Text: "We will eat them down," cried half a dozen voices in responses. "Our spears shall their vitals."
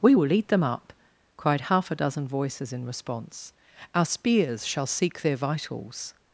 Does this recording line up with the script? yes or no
no